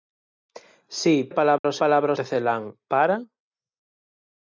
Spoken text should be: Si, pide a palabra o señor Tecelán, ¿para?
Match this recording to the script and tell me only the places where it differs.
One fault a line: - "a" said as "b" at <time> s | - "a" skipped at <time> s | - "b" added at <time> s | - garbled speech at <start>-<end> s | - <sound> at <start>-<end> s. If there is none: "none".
- "pide" skipped at 1.1 s
- dropout at 1.6-1.6 s
- "señor" said as "palabra" at 1.8 s